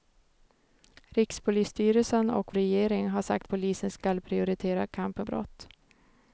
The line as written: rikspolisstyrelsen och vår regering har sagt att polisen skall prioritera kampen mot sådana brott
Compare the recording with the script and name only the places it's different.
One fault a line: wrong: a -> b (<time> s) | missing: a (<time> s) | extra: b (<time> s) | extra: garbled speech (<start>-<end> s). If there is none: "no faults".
missing: vår (2.5 s)
missing: att (3.5 s)
missing: mot sådana (5.3 s)